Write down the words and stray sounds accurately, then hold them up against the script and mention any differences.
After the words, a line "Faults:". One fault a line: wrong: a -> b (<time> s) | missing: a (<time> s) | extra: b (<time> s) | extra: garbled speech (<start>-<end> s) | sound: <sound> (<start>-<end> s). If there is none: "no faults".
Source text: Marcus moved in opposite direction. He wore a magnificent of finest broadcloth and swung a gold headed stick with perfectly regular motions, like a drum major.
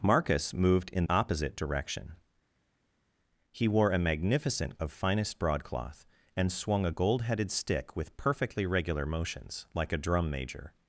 Marcus moved in opposite direction. He wore a magnificent of finest broadcloth and swung a gold headed stick with perfectly regular motions, like a drum major.
Faults:
no faults